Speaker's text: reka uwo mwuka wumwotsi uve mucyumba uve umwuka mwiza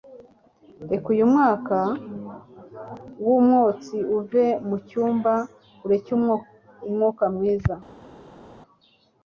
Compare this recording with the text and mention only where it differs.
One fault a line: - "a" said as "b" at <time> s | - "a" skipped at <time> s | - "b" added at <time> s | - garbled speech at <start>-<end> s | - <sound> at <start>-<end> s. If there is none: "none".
- "uwo" said as "uyu" at 1.1 s
- "uve" said as "ureke" at 5.8 s